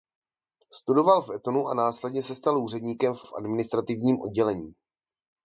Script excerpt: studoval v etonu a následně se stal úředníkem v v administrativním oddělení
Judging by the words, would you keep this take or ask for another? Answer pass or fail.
pass